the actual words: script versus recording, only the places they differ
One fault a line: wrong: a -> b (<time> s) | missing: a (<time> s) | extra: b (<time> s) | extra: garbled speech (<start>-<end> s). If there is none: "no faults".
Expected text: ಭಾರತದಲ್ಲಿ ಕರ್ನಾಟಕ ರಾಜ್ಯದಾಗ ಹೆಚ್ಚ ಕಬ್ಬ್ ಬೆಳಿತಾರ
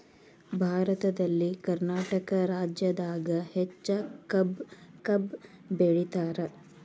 extra: ಕಬ್ಬ್ (5.0 s)